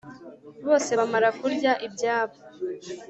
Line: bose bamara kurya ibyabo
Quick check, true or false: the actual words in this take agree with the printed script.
true